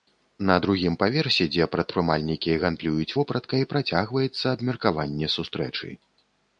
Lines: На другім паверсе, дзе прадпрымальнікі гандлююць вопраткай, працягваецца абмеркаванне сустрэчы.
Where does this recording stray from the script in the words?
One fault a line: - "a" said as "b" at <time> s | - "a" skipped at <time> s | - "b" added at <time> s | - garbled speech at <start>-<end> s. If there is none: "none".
none